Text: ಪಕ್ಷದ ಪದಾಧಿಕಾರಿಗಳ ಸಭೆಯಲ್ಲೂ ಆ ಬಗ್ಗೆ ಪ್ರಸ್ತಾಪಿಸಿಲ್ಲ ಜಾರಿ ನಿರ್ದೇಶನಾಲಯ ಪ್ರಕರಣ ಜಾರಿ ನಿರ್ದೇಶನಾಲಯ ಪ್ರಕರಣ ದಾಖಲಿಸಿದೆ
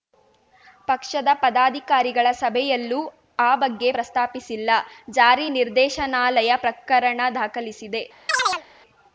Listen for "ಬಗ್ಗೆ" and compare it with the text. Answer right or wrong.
right